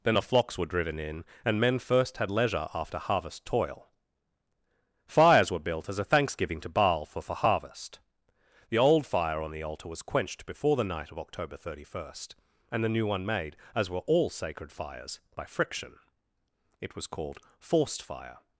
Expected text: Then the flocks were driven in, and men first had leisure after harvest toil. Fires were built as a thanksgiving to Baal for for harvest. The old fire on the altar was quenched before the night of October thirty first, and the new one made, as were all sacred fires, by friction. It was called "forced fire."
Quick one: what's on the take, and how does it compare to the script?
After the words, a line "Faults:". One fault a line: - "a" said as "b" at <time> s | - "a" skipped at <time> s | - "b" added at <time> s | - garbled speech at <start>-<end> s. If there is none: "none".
Then the flocks were driven in, and men first had leisure after harvest toil. Fires were built as a thanksgiving to Baal for for harvest. The old fire on the altar was quenched before the night of October thirty first, and the new one made, as were all sacred fires, by friction. It was called "forced fire."
Faults:
none